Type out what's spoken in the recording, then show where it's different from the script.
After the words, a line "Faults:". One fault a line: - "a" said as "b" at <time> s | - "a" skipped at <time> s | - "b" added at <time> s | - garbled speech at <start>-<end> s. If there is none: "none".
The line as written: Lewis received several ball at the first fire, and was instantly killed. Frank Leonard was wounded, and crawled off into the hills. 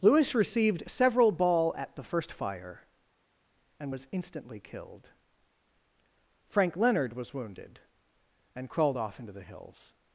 Lewis received several ball at the first fire, and was instantly killed. Frank Leonard was wounded, and crawled off into the hills.
Faults:
none